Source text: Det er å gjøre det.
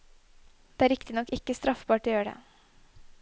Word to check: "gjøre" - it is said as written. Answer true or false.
true